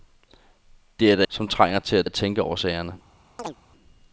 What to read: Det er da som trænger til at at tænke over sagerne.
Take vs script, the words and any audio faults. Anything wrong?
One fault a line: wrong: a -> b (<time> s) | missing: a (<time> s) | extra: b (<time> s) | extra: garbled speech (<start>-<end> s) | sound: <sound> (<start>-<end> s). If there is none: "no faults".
sound: chirp (3.4-3.6 s)